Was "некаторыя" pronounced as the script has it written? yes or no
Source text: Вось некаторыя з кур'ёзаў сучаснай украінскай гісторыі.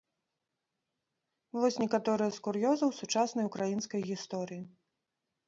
yes